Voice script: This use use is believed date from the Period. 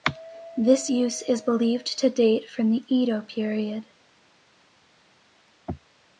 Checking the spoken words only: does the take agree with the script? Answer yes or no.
no